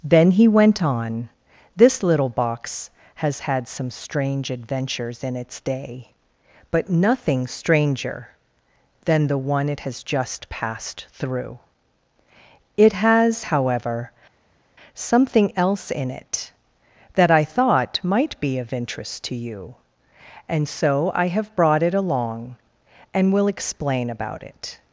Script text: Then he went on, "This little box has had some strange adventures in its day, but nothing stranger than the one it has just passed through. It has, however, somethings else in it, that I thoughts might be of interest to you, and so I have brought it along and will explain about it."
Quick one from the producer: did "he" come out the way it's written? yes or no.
yes